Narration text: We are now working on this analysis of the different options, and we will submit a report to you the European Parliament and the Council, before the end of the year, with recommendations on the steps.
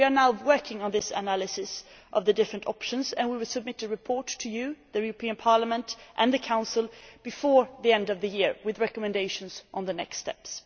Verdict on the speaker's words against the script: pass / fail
fail